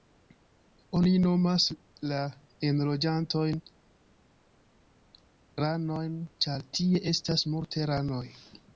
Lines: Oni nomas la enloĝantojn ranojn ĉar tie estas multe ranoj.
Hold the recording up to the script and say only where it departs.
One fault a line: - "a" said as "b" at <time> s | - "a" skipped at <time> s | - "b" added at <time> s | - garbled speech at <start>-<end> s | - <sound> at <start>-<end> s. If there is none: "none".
none